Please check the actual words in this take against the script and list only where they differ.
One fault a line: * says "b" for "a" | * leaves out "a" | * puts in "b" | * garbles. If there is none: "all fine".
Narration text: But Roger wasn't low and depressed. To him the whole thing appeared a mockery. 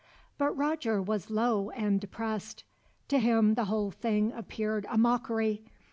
* says "was" for "wasn't"